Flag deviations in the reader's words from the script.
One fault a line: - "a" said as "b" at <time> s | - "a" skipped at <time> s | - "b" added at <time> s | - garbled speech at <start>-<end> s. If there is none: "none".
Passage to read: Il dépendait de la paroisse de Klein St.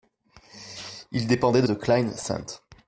- "la paroisse" skipped at 1.7 s